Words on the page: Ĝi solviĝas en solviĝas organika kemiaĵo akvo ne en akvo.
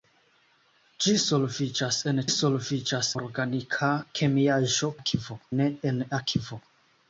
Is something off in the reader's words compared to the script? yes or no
no